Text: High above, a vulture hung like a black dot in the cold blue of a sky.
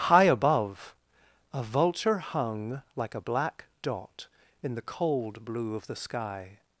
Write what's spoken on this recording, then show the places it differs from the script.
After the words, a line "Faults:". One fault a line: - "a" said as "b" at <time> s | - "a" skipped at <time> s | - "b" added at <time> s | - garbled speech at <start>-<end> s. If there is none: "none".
High above, a vulture hung like a black dot in the cold blue of the sky.
Faults:
- "a" said as "the" at 5.8 s